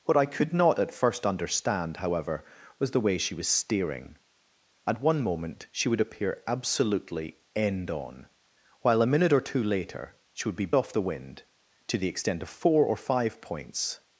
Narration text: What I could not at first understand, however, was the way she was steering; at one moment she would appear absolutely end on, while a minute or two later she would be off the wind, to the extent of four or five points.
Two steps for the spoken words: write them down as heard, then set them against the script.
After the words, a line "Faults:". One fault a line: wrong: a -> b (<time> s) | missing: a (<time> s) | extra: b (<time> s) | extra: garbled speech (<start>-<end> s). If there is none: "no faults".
What I could not at first understand, however, was the way she was steering; at one moment she would appear absolutely end on, while a minute or two later she would be off the wind, to the extent of four or five points.
Faults:
no faults